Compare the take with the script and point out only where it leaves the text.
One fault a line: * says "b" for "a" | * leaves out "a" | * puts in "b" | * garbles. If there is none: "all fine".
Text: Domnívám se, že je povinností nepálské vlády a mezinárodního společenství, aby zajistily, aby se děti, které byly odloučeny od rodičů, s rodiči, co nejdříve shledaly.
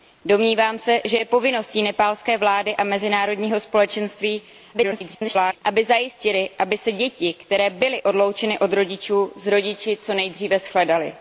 * garbles